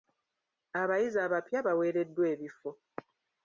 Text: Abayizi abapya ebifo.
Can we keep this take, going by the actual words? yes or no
no